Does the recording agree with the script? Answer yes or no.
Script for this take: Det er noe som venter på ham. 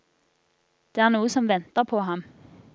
yes